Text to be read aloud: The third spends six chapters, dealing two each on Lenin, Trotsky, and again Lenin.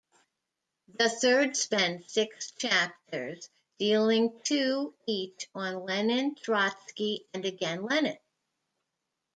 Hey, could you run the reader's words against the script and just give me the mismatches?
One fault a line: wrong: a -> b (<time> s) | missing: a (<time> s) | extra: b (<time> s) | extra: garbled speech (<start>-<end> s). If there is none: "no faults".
no faults